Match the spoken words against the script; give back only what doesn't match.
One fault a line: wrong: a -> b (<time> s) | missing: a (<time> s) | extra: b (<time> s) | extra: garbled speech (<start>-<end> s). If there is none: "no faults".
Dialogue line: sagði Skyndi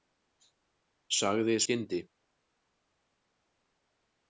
no faults